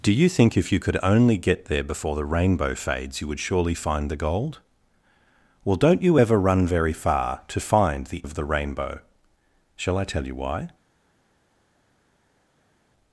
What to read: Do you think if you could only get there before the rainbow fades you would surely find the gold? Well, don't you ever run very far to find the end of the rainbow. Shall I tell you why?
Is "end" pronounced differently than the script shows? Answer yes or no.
yes